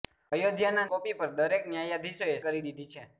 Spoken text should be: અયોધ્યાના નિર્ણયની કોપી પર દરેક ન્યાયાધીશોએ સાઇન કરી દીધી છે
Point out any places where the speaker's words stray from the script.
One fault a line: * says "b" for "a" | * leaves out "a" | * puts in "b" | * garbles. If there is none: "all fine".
* leaves out "નિર્ણયની"
* leaves out "સાઇન"